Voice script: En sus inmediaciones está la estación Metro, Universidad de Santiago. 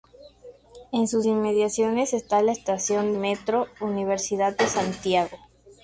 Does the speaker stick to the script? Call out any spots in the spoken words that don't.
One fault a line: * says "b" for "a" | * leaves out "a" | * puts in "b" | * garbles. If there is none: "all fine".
all fine